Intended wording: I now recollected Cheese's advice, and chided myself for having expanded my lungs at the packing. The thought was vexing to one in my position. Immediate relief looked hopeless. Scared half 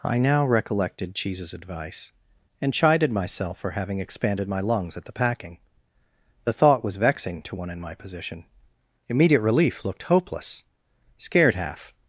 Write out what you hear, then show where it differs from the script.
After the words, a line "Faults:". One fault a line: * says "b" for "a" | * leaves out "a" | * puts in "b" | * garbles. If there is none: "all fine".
I now recollected Cheese's advice, and chided myself for having expanded my lungs at the packing. The thought was vexing to one in my position. Immediate relief looked hopeless. Scared half
Faults:
all fine